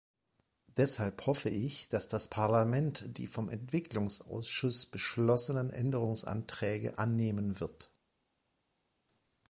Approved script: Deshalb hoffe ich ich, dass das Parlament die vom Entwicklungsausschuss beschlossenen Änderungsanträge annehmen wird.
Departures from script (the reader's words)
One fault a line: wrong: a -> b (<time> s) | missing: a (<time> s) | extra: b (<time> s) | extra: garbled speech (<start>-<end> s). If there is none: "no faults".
missing: ich (1.9 s)